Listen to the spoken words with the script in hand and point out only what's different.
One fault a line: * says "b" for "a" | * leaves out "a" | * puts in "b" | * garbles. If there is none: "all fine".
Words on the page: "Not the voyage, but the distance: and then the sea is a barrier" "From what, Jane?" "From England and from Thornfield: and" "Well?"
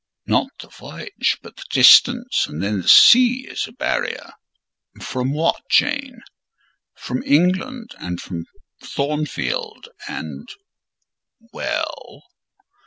all fine